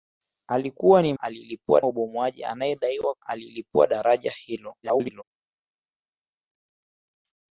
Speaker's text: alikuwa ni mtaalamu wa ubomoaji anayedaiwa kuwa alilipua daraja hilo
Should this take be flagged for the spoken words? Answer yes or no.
yes